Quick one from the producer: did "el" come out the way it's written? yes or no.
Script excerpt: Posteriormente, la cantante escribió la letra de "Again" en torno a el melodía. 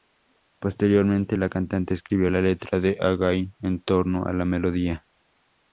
no